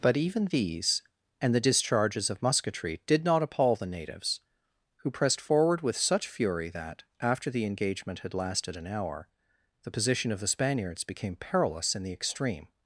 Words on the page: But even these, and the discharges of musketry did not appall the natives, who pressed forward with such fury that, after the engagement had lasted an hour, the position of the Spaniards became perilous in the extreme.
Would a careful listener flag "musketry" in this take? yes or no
no